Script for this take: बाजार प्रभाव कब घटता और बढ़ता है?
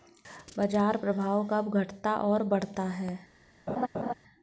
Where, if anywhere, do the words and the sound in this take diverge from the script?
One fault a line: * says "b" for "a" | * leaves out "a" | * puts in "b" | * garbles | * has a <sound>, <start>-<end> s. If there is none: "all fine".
* has a laugh, 3.7-4.1 s